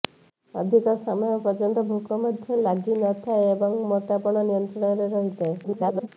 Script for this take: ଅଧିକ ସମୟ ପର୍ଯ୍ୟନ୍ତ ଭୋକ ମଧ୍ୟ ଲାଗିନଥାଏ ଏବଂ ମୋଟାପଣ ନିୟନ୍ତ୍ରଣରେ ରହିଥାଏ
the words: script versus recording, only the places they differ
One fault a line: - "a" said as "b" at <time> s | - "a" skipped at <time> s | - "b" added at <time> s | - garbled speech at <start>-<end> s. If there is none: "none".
- garbled speech at 5.6-6.1 s